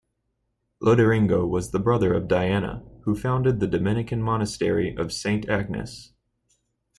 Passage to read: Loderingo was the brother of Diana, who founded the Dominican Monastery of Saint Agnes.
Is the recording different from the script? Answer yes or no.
no